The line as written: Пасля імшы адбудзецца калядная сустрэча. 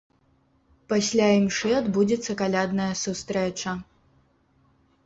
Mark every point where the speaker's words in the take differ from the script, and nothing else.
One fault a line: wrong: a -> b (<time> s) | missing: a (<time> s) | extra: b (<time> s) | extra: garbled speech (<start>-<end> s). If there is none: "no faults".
no faults